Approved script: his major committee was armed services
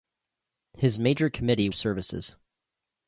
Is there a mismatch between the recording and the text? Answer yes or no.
yes